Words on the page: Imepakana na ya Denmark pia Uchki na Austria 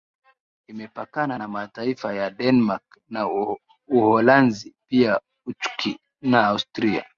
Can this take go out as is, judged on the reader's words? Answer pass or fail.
fail